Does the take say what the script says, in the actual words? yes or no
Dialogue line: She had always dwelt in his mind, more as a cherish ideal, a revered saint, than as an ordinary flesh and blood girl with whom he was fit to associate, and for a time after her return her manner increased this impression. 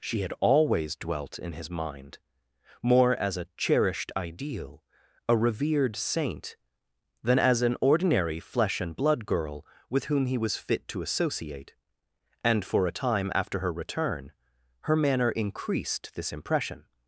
no